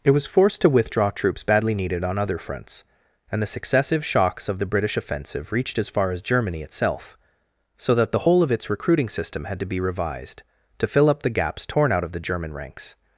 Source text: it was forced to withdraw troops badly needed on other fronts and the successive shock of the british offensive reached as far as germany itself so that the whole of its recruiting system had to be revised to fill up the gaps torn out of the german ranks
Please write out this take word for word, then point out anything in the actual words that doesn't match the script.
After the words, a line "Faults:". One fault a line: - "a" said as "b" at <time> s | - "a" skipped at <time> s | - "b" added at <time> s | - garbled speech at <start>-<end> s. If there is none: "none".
it was forced to withdraw troops badly needed on other fronts and the successive shocks of the british offensive reached as far as germany itself so that the whole of its recruiting system had to be revised to fill up the gaps torn out of the german ranks
Faults:
- "shock" said as "shocks" at 4.0 s